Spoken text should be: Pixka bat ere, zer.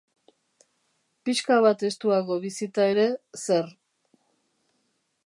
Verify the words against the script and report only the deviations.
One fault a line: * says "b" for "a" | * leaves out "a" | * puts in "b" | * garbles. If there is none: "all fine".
* puts in "estuago bizita"